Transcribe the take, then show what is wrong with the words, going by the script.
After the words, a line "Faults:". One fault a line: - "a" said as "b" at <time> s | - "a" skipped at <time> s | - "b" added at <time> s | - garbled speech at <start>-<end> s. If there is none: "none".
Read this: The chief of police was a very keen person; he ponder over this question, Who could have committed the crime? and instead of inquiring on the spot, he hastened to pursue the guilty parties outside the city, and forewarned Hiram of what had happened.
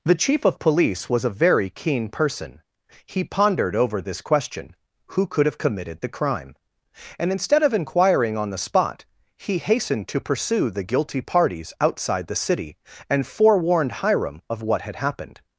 The chief of police was a very keen person; he pondered over this question, Who could have committed the crime? and instead of inquiring on the spot, he hastened to pursue the guilty parties outside the city, and forewarned Hiram of what had happened.
Faults:
- "ponder" said as "pondered" at 3.2 s